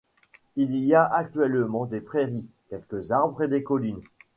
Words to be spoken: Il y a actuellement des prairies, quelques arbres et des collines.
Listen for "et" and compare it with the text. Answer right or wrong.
right